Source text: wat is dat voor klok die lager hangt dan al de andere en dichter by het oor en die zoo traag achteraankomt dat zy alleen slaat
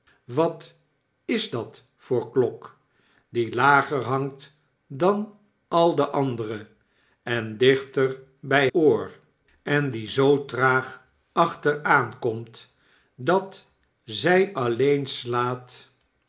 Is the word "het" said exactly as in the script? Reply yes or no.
no